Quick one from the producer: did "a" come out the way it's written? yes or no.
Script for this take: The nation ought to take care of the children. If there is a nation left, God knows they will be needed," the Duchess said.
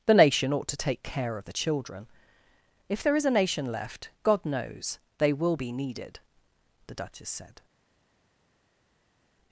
yes